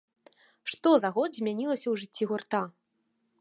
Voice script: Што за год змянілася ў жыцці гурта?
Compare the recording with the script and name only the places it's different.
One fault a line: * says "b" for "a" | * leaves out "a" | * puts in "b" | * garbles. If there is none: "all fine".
all fine